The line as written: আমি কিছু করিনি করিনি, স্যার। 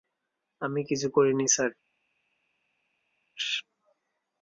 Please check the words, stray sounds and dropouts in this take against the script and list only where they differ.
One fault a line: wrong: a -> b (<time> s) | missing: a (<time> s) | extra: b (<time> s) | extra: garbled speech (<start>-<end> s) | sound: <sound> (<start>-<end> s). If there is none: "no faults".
missing: করিনি (1.5 s)